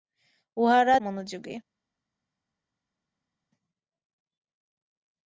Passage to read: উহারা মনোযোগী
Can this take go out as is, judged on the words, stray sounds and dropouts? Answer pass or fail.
pass